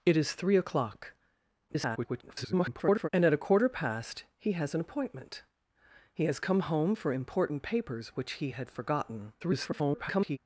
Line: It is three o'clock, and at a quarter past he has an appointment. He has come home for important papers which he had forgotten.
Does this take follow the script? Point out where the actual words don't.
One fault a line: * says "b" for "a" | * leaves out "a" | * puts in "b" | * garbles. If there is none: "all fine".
* garbles
* garbles